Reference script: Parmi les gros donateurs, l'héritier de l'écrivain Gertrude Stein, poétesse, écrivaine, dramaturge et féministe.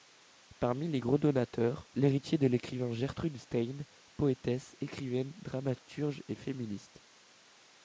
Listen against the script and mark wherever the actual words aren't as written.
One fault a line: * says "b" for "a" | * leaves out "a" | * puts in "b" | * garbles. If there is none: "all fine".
all fine